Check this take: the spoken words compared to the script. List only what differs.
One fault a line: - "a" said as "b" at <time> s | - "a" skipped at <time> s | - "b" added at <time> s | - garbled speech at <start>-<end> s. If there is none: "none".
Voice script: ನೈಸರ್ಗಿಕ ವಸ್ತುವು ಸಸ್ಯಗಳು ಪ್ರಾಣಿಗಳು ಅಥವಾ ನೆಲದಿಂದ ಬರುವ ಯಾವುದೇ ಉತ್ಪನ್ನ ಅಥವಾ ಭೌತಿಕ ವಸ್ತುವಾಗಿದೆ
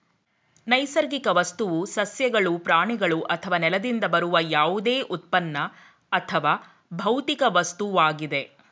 none